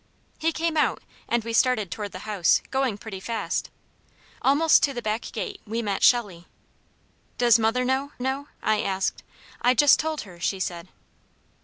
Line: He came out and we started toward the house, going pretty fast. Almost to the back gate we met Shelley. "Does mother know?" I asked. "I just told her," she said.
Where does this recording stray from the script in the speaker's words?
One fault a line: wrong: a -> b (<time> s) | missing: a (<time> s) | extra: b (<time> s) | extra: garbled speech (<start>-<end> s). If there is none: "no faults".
extra: know (8.2 s)